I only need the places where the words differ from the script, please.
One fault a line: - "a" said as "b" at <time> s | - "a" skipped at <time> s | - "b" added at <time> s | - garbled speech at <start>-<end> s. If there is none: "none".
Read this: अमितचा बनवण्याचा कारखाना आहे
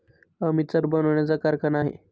none